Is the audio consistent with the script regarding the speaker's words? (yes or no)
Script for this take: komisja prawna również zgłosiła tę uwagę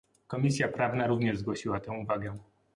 yes